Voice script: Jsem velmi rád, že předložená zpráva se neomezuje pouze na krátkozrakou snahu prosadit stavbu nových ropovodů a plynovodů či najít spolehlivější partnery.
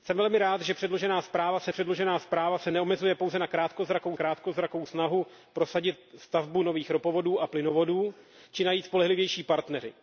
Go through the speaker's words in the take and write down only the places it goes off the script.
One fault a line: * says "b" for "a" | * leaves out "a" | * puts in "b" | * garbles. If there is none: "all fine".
* puts in "předložená zpráva se"
* puts in "krátkozrakou"